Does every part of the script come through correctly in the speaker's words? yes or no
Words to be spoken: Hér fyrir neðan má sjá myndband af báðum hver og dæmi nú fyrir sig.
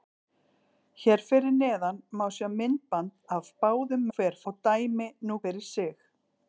yes